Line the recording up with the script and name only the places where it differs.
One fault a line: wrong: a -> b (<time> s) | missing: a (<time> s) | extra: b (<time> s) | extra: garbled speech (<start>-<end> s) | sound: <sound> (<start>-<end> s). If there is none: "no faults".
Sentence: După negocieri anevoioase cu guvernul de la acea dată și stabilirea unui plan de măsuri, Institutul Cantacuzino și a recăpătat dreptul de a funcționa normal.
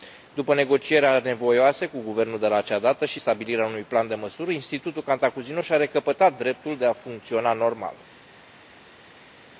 no faults